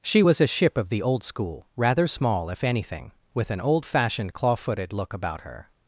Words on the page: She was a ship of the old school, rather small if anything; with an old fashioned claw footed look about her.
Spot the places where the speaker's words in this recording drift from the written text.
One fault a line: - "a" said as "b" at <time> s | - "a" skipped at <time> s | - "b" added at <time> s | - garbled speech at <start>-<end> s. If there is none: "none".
none